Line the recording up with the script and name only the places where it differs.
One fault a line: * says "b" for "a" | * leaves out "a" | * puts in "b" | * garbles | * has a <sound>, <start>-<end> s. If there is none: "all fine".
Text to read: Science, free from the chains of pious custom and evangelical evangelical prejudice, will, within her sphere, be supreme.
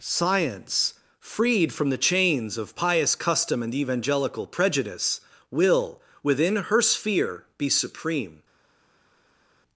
* says "freed" for "free"
* leaves out "evangelical"